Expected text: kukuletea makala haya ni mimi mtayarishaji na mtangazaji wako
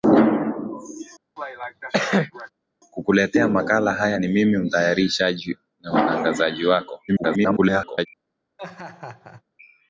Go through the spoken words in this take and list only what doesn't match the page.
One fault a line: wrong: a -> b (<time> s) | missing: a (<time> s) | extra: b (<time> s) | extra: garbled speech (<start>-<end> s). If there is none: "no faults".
extra: garbled speech (7.1-8.1 s)